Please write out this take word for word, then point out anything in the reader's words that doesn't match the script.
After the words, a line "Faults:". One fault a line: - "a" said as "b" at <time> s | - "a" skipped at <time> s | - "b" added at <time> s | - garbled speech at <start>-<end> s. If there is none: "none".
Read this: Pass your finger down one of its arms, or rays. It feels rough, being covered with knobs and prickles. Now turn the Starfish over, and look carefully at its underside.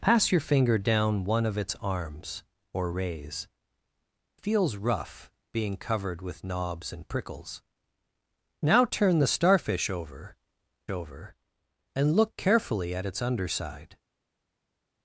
Pass your finger down one of its arms, or rays. Feels rough, being covered with knobs and prickles. Now turn the Starfish over over, and look carefully at its underside.
Faults:
- "It" skipped at 3.5 s
- "over" added at 10.9 s